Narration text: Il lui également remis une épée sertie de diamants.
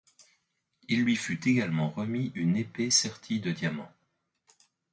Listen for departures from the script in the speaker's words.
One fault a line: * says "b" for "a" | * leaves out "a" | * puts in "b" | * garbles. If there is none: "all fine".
* puts in "fut"